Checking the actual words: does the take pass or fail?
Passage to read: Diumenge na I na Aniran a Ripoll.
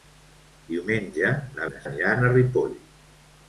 pass